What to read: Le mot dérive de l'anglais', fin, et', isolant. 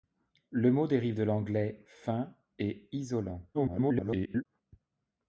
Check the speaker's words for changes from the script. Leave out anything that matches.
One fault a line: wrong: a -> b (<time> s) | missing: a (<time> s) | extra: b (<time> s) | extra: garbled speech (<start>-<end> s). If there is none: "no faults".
extra: garbled speech (3.5-4.5 s)